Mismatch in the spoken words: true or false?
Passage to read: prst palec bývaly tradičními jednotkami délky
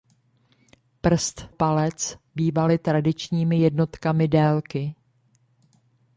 false